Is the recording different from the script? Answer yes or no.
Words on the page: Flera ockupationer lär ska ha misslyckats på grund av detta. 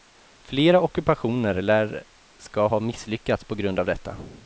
no